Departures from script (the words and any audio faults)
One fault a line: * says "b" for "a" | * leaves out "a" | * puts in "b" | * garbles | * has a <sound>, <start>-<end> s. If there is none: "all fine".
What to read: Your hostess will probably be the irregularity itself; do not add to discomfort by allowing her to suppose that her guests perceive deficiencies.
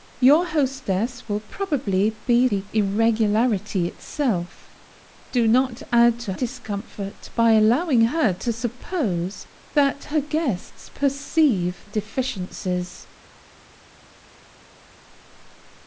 all fine